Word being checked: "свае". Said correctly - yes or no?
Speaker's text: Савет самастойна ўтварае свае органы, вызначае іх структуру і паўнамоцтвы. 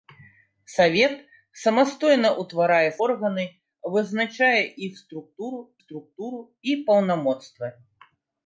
no